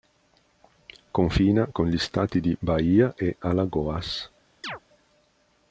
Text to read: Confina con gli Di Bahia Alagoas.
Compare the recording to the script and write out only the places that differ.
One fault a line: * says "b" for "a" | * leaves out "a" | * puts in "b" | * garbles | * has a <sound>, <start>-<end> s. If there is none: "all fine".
* puts in "Stati"
* puts in "e"
* has a chirp, 4.6-4.8 s